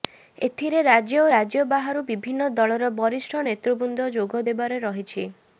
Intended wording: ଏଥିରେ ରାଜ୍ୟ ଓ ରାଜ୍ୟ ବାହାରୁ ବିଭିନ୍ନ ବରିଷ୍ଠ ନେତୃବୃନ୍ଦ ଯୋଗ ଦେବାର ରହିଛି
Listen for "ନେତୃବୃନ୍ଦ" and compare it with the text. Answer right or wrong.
right